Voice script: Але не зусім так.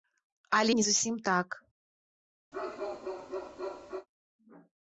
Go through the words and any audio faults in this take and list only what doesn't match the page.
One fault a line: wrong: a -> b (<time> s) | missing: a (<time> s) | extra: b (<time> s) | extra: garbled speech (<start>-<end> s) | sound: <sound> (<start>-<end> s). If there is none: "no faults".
sound: bark (2.5-4.1 s)